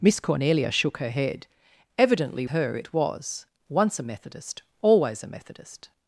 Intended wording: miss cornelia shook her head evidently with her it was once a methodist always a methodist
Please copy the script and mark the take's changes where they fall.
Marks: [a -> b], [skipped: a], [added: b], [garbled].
miss cornelia shook her head evidently [skipped: with] her it was once a methodist always a methodist